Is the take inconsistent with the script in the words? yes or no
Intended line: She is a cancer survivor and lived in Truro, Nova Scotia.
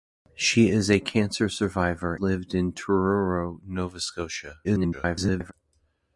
yes